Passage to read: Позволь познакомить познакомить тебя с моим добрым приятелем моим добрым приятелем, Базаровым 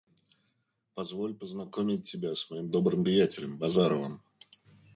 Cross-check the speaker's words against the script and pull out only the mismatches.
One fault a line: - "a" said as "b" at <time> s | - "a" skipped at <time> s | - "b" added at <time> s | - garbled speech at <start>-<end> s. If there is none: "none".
- "познакомить" skipped at 2.1 s
- "моим добрым приятелем" skipped at 3.6 s